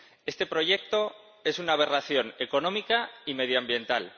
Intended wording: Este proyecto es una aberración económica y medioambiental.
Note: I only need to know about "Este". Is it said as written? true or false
true